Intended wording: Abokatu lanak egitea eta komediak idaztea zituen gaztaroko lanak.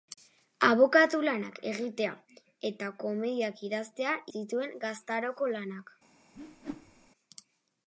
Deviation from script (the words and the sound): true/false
true